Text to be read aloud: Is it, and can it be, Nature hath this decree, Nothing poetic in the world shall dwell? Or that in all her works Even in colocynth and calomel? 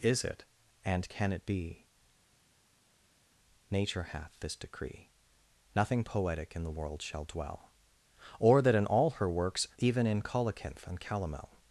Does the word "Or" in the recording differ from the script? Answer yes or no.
no